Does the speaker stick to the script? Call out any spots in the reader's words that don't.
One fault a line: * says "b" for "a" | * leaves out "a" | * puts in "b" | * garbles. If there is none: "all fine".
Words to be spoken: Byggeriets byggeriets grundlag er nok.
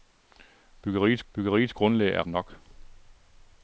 all fine